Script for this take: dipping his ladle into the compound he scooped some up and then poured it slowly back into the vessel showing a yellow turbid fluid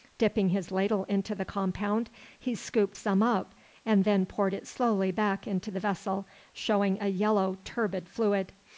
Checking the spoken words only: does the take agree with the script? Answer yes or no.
yes